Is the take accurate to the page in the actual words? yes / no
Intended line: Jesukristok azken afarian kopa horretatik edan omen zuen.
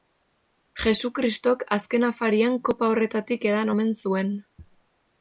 yes